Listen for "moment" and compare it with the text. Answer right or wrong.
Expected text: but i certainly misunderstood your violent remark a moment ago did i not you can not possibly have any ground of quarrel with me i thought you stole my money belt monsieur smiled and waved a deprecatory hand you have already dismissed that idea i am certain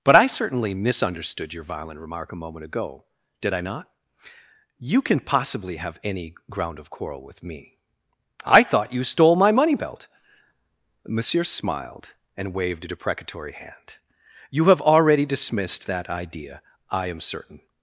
right